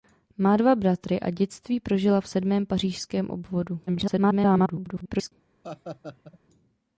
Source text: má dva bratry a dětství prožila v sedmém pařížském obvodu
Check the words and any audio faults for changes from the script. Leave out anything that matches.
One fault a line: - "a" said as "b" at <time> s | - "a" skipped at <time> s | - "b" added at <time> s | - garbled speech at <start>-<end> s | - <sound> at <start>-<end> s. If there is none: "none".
- garbled speech at 3.9-5.3 s
- laugh at 5.6-6.4 s